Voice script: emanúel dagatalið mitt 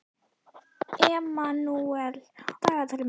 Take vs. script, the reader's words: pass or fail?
pass